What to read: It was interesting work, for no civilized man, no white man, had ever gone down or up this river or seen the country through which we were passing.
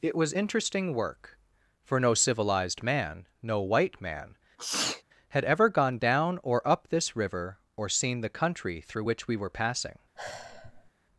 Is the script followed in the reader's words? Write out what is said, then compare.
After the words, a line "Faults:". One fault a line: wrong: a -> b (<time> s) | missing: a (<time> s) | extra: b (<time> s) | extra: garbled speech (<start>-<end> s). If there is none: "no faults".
It was interesting work, for no civilized man, no white man, had ever gone down or up this river or seen the country through which we were passing.
Faults:
no faults